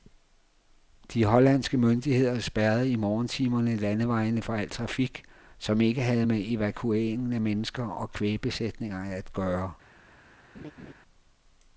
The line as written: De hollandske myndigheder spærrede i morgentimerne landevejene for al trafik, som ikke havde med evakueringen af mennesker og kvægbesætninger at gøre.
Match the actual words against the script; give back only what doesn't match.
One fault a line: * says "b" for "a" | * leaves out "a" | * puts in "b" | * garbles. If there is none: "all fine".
all fine